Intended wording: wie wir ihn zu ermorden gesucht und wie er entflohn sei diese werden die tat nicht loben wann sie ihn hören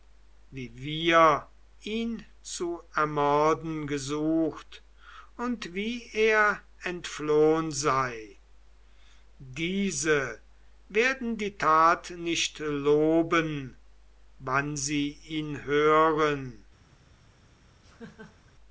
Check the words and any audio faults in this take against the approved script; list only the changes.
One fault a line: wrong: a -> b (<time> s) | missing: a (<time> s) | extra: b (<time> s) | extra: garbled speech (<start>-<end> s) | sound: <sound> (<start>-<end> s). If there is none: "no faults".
sound: laugh (17.8-18.5 s)